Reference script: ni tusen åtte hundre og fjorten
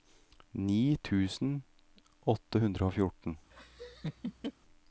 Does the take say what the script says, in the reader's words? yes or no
yes